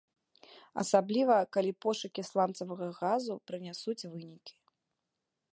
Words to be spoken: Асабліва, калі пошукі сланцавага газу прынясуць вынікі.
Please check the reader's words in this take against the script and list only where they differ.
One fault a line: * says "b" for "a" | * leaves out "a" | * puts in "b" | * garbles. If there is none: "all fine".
all fine